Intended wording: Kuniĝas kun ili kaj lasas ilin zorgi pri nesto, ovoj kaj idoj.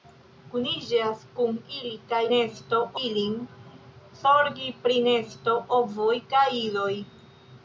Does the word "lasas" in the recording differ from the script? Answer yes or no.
yes